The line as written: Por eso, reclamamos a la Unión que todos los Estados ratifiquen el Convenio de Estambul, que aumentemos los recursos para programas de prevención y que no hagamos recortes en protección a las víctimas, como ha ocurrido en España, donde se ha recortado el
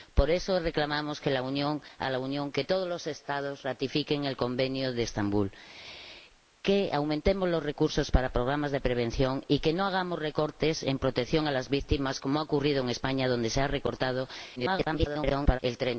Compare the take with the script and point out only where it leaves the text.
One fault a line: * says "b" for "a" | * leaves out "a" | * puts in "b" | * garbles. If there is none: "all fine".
* garbles